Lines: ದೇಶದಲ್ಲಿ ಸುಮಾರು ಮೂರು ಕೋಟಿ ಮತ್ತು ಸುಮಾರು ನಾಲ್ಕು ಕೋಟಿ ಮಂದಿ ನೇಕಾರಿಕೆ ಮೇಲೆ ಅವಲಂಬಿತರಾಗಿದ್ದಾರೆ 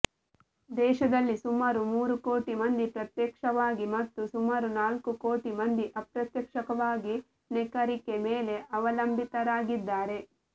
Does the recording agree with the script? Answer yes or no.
no